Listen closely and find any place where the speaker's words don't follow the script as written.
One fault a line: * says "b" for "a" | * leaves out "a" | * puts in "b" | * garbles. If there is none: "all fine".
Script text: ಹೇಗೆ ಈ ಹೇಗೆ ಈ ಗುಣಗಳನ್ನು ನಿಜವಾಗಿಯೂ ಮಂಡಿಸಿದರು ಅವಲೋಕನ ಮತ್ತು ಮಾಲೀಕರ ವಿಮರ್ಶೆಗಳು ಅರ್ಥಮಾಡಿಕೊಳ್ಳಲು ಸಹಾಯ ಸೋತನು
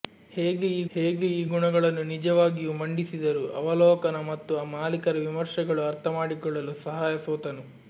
all fine